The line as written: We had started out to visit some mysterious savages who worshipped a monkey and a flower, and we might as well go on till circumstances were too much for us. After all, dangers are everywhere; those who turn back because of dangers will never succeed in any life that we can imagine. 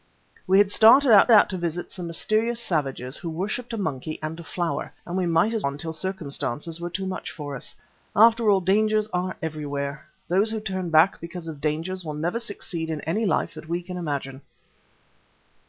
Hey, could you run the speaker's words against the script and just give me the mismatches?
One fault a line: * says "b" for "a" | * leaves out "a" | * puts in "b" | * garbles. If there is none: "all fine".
* puts in "out"
* leaves out "well go"